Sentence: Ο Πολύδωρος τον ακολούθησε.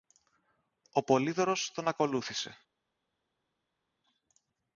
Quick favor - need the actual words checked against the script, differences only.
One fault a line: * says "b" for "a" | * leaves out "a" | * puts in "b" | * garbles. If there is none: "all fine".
all fine